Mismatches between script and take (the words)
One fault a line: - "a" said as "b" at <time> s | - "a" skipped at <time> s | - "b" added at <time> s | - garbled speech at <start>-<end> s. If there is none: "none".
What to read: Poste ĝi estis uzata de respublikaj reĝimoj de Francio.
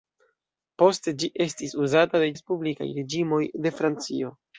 none